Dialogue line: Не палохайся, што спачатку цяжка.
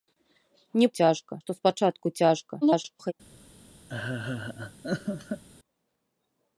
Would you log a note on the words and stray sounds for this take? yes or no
yes